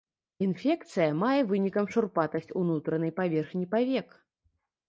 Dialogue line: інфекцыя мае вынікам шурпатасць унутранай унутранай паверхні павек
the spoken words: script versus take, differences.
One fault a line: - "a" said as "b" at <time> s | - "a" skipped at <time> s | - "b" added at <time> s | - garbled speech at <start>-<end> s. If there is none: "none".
- "унутранай" skipped at 3.1 s